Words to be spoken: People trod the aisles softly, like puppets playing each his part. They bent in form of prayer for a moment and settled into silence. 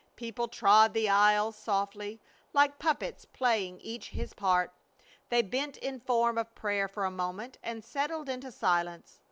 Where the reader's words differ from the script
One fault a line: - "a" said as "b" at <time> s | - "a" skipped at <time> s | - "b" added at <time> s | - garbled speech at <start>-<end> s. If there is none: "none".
none